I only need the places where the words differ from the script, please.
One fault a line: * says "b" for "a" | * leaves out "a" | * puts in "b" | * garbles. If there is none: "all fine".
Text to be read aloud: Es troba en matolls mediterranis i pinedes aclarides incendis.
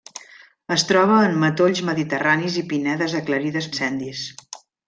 all fine